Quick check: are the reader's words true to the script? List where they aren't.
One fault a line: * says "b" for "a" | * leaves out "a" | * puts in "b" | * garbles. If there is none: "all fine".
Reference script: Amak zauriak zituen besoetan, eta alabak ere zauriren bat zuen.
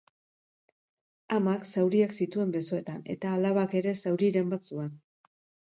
all fine